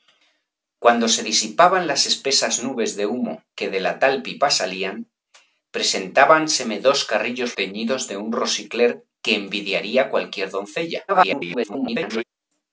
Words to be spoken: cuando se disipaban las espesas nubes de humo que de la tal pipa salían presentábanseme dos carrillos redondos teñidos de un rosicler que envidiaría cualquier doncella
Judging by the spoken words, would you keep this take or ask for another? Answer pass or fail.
fail